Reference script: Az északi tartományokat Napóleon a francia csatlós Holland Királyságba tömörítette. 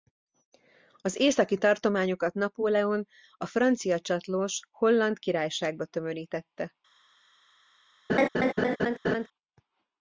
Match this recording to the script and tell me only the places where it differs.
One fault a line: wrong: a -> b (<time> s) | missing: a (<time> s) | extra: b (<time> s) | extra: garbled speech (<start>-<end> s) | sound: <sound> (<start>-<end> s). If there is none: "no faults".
sound: laugh (8.1-9.3 s)